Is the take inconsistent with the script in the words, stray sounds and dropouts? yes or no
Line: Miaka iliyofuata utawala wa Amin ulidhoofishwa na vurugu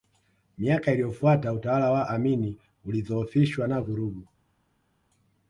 no